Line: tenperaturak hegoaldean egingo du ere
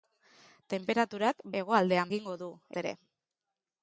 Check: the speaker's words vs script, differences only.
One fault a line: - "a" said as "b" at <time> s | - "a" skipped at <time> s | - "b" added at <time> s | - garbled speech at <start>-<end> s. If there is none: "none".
none